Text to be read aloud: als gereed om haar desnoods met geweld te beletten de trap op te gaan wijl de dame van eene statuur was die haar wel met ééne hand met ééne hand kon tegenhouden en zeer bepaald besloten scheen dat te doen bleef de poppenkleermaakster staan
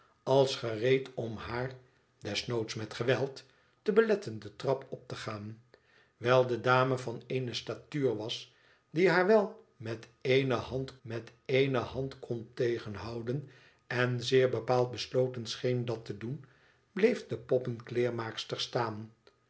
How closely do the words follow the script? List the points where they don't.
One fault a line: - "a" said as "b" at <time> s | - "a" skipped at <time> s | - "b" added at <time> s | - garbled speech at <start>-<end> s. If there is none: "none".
none